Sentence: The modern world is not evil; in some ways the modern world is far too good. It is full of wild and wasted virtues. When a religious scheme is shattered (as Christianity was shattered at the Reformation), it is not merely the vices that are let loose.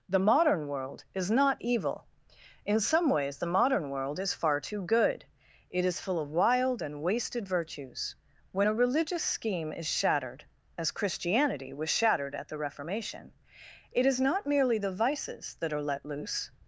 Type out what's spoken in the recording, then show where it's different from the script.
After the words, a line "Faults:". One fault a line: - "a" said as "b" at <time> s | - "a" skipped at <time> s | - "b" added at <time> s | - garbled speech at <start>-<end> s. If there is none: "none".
The modern world is not evil; in some ways the modern world is far too good. It is full of wild and wasted virtues. When a religious scheme is shattered (as Christianity was shattered at the Reformation), it is not merely the vices that are let loose.
Faults:
none